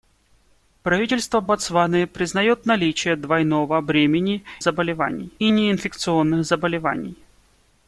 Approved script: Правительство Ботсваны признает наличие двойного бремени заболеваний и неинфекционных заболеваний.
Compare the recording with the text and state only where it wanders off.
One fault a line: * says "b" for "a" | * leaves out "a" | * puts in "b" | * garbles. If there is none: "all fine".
all fine